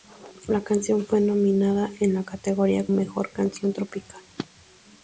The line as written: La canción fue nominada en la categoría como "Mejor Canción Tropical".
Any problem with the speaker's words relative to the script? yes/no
yes